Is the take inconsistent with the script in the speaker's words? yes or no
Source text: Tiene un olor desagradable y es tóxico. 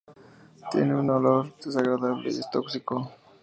no